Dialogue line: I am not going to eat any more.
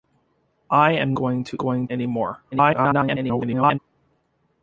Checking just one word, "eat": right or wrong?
wrong